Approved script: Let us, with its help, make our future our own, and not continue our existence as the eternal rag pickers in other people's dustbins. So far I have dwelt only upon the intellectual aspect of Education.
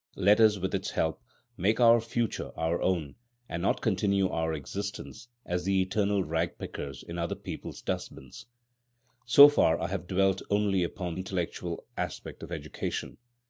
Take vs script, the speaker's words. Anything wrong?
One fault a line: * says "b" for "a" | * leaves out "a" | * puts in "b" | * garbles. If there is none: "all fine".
* leaves out "the"